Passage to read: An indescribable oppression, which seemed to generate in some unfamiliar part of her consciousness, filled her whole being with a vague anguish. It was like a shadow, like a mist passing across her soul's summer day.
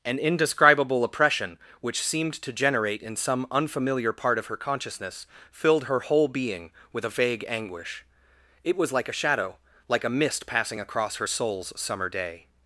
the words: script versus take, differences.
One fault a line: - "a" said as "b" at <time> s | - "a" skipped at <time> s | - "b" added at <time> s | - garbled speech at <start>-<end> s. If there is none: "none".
none